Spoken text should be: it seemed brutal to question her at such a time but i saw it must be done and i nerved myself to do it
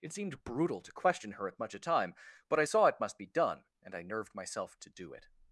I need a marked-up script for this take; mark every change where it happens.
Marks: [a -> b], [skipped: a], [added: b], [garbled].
it seemed brutal to question her at [such -> much] a time but i saw it must be done and i nerved myself to do it